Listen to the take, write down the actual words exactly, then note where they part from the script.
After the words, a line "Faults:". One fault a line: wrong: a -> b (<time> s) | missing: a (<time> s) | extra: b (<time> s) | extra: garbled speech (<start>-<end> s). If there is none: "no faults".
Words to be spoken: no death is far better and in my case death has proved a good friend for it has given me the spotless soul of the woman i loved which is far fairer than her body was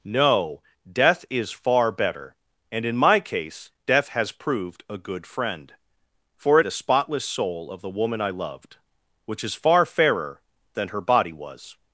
no death is far better and in my case death has proved a good friend for it the spotless soul of the woman i loved which is far fairer than her body was
Faults:
missing: has given me (6.7 s)